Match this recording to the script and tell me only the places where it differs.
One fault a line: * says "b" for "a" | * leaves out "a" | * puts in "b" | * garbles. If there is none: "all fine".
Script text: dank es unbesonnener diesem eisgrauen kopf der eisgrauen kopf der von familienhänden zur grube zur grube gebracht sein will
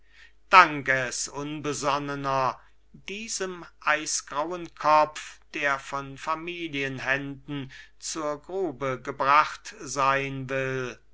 * leaves out "eisgrauen kopf der"
* leaves out "zur grube"